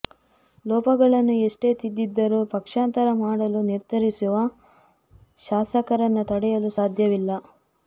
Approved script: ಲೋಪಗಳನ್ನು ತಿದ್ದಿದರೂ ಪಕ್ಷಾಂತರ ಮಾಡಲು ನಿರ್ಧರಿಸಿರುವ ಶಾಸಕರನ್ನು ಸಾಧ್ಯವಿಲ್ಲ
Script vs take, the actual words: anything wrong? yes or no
yes